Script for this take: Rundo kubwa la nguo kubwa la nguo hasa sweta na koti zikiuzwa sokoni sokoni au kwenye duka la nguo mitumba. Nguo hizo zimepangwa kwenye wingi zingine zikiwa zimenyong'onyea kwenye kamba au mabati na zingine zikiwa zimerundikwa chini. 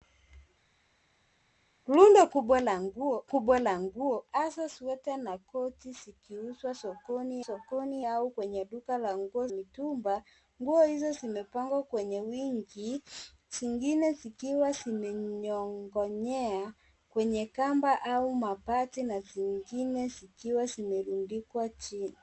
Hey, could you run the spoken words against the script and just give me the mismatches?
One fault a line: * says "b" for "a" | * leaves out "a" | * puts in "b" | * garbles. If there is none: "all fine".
all fine